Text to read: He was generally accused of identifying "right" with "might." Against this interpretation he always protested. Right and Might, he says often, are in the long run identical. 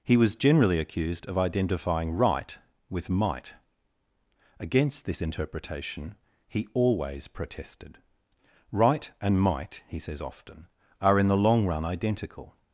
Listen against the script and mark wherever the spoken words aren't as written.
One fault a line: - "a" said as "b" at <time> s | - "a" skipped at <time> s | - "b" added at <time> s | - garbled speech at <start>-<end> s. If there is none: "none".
none